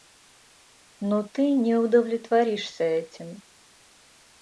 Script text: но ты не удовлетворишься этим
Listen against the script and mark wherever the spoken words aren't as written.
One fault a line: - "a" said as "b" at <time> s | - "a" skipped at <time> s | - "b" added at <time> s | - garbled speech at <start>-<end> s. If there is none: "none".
none